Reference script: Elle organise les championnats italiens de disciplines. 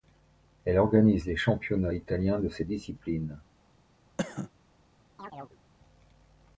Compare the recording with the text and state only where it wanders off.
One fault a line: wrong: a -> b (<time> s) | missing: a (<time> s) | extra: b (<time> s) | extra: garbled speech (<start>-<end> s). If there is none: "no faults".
extra: ces (2.5 s)